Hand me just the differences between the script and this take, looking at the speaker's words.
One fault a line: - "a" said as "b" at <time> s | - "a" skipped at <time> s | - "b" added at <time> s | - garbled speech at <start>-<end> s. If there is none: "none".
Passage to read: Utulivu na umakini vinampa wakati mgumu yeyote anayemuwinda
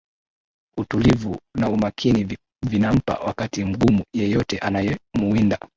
none